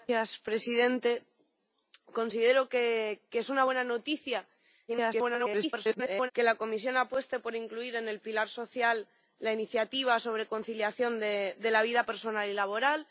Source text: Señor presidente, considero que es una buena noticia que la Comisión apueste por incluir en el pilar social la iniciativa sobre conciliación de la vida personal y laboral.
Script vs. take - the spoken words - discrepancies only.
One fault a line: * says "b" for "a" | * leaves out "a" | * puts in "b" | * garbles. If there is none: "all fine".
* garbles